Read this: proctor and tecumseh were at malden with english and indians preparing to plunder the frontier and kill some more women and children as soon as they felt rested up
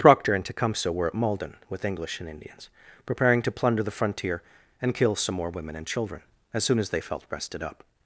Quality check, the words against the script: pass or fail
pass